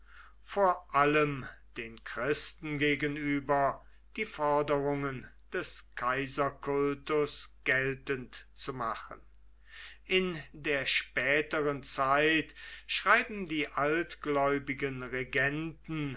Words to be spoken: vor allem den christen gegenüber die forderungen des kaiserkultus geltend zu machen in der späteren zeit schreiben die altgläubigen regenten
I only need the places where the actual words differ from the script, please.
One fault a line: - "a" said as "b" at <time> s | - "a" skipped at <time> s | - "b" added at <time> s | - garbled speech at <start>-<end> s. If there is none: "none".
none